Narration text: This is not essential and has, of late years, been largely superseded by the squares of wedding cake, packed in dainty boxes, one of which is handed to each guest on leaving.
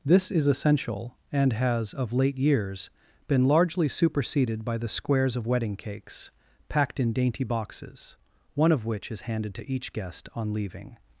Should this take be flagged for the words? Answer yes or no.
yes